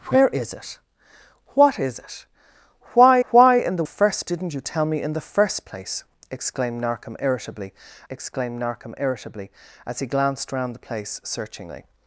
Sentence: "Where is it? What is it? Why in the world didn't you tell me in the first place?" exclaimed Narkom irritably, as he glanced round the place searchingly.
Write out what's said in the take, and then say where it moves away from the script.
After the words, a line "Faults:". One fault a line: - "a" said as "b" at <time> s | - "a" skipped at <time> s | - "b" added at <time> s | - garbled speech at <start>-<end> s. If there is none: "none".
"Where is it? What is it? Why why in the first didn't you tell me in the first place?" exclaimed Narkom irritably exclaimed Narkom irritably, as he glanced round the place searchingly.
Faults:
- "why" added at 3.3 s
- "world" said as "first" at 3.8 s
- "exclaimed Narkom irritably" added at 8.1 s